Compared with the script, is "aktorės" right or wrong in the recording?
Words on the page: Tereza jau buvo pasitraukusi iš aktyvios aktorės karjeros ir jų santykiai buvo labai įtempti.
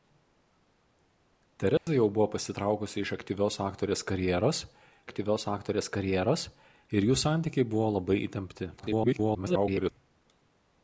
right